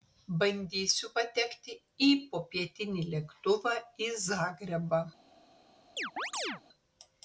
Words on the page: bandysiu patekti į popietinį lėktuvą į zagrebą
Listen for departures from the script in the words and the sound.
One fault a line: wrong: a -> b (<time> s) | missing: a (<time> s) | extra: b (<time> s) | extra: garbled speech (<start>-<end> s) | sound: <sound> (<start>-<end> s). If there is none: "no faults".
sound: chirp (6.0-6.6 s)